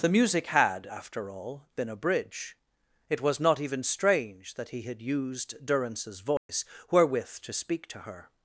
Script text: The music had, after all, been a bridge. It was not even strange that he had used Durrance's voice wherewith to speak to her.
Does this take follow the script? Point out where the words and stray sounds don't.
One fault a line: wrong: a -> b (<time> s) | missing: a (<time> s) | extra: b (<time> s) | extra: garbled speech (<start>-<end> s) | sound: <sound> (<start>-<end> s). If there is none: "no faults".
sound: dropout (6.4-6.5 s)